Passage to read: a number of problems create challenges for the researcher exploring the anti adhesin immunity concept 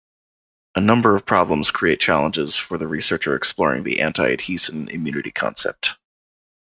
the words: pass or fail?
pass